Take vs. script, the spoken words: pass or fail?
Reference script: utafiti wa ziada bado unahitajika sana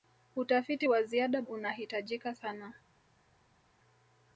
fail